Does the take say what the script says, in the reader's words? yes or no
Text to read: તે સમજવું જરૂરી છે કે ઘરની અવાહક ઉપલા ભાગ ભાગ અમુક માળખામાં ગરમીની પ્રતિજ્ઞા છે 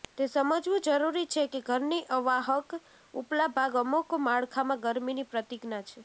no